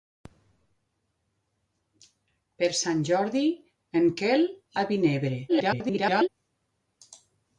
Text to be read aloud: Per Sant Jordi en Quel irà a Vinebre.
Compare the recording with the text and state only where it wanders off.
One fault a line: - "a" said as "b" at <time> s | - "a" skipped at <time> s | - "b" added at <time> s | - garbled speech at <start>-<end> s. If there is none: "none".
- "irà" skipped at 4.5 s
- garbled speech at 5.5-6.3 s